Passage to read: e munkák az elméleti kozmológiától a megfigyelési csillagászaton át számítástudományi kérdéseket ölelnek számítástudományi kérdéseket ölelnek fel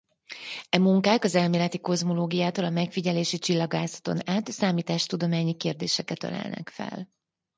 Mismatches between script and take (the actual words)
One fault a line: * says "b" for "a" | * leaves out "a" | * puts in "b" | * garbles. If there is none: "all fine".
* leaves out "számítástudományi kérdéseket ölelnek"